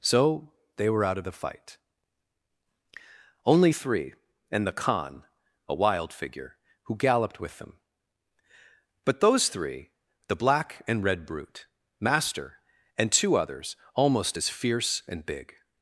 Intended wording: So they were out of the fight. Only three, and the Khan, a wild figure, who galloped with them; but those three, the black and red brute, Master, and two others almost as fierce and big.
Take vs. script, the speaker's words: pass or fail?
pass